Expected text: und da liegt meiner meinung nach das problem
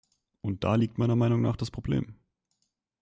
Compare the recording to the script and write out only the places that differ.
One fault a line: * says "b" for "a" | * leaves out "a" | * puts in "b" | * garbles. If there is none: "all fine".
all fine